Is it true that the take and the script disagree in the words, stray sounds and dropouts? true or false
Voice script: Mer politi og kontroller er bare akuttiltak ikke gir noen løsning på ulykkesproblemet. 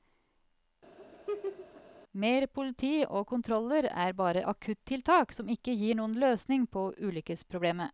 true